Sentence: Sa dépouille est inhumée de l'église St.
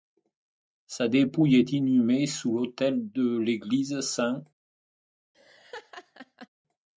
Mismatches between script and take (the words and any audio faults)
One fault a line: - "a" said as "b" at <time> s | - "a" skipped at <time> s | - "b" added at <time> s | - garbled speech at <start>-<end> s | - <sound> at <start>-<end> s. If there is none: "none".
- "sous l'autel" added at 2.2 s
- laugh at 5.3-6.5 s